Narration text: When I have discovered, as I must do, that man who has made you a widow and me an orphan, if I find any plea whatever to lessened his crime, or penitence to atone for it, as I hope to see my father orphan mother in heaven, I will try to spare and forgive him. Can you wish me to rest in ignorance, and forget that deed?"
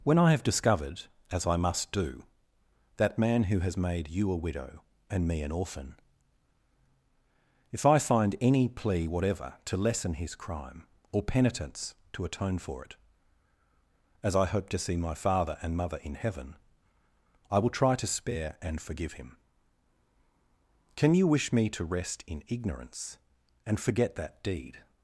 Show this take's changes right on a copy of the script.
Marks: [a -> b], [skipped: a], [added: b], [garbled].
When I have discovered, as I must do, that man who has made you a widow and me an orphan, if I find any plea whatever to [lessened -> lessen] his crime, or penitence to atone for it, as I hope to see my father [orphan -> and] mother in heaven, I will try to spare and forgive him. Can you wish me to rest in ignorance, and forget that deed?"